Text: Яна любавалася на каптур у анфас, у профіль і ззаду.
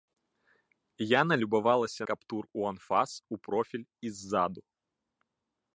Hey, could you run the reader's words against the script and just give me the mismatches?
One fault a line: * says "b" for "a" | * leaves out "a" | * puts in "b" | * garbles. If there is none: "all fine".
* leaves out "на"